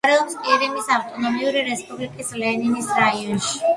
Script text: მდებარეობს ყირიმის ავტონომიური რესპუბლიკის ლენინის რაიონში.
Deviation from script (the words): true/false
false